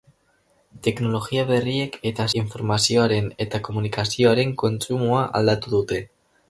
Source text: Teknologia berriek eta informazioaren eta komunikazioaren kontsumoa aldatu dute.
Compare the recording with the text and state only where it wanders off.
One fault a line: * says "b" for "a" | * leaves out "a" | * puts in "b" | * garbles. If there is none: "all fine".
all fine